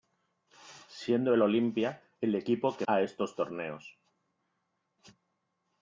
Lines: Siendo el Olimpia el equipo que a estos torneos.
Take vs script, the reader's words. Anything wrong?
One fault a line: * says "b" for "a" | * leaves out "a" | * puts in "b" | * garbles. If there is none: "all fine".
all fine